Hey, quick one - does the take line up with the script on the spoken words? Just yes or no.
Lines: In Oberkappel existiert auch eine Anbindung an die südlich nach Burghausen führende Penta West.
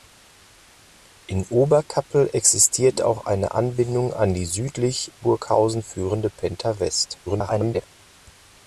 no